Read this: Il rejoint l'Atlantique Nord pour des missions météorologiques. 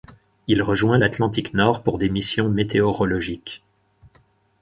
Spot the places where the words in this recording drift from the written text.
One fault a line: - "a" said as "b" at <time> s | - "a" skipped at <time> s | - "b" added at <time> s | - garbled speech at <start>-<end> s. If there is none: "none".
none